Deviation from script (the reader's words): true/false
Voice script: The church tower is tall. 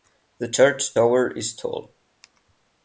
false